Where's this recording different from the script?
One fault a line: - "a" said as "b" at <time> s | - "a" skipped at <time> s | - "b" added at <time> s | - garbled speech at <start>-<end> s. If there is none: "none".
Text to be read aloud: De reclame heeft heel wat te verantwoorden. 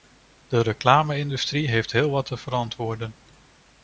- "industrie" added at 1.2 s